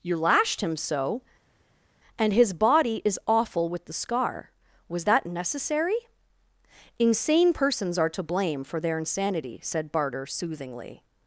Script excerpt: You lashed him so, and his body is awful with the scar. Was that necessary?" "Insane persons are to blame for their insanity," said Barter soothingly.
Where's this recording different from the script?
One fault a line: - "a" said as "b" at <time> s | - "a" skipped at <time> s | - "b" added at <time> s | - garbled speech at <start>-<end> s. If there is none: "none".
none